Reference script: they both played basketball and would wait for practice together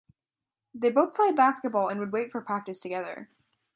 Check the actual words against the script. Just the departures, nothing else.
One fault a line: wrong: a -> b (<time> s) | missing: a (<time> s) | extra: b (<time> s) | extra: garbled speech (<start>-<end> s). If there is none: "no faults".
no faults